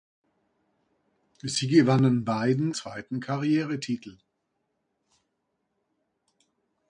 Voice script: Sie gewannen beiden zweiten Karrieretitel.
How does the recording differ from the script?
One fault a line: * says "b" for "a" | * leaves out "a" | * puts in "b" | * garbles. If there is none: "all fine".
all fine